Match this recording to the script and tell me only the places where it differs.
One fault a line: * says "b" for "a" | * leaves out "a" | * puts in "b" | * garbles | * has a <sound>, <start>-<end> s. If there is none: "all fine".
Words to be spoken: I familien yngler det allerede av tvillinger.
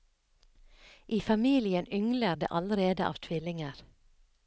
all fine